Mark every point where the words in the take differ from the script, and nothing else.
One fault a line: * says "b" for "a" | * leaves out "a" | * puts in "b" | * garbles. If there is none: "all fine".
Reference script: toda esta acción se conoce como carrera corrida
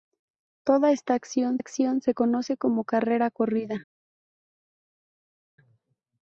* puts in "acción"